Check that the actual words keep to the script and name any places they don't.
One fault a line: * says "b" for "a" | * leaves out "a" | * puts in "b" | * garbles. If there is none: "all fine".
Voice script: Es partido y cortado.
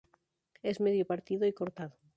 * puts in "medio"